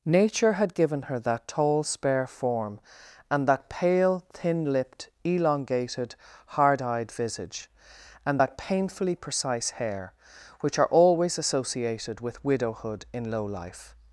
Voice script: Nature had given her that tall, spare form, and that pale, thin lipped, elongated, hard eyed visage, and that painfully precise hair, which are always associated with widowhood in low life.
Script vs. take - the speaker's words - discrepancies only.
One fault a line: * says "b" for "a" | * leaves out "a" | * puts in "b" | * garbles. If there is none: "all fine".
all fine